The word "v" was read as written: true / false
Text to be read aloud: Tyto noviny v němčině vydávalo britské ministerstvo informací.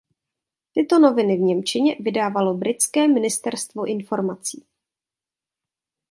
true